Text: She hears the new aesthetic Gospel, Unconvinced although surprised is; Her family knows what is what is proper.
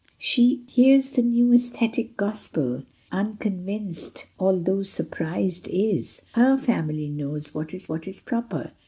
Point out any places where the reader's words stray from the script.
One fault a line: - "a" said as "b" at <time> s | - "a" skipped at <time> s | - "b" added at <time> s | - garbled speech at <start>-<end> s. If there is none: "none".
none